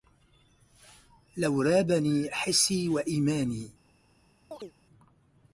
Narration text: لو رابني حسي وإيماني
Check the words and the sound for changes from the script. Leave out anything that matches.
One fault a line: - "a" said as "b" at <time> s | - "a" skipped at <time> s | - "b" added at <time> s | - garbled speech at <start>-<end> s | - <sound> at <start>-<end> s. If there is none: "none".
- chirp at 4.5-4.7 s